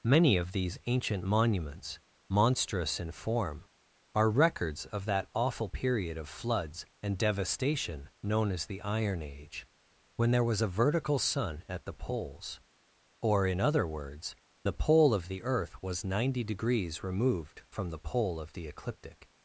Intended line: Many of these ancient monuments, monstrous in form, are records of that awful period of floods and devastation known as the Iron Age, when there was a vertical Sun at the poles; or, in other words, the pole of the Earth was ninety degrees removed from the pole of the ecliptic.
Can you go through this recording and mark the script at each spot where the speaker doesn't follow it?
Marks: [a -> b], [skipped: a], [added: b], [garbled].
Many of these ancient monuments, monstrous in form, are records of that awful period of floods and devastation known as the Iron Age, when there was a vertical Sun at the poles; or, in other words, the pole of the Earth was ninety degrees removed from the pole of the ecliptic.